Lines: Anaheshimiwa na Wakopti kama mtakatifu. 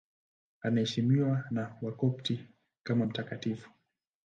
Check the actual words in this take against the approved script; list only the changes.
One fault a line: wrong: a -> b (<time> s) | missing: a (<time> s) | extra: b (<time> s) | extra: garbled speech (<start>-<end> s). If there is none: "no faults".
no faults